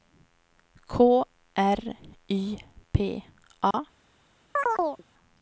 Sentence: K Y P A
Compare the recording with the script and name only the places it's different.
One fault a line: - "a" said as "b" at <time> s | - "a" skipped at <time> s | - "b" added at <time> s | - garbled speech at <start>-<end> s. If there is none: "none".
- "R" added at 1.5 s